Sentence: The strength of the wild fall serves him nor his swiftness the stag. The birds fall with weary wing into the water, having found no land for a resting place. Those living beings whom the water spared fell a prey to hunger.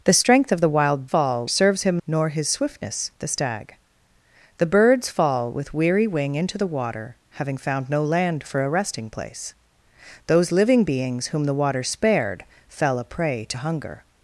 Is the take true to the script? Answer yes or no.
yes